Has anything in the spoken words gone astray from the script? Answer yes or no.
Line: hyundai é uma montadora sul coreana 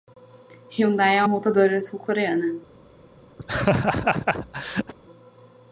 yes